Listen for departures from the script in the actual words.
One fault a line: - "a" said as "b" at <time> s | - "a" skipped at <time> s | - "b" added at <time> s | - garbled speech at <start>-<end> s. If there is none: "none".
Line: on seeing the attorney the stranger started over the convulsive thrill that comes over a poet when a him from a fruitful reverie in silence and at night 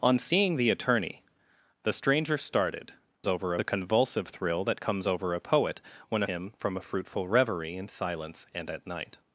none